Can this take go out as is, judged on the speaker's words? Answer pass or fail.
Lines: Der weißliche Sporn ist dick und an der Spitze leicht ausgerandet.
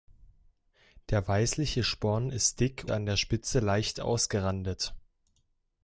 fail